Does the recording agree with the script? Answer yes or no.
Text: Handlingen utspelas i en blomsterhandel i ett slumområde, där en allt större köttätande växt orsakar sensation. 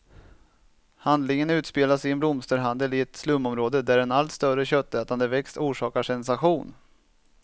yes